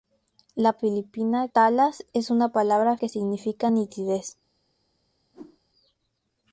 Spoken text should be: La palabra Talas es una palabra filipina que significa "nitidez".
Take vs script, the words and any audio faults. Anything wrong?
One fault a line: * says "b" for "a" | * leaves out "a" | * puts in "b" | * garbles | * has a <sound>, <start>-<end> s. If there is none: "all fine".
* says "filipina" for "palabra"
* leaves out "filipina"
* has a whoosh, 5.3-5.6 s